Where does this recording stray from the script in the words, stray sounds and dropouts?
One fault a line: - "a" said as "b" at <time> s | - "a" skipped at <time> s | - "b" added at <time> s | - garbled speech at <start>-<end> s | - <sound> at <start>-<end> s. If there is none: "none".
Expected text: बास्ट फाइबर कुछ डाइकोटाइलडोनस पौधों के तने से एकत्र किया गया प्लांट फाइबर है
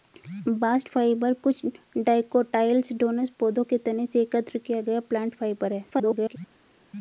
- garbled speech at 5.9-6.4 s